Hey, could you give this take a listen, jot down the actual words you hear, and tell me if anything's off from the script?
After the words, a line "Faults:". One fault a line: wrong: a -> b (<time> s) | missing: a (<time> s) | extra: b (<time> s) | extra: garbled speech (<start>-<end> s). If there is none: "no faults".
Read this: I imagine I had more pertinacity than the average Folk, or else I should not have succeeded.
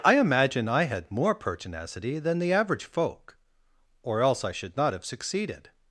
I imagine I had more pertinacity than the average Folk, or else I should not have succeeded.
Faults:
no faults